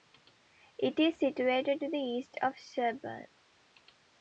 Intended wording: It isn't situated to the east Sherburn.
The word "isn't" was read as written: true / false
false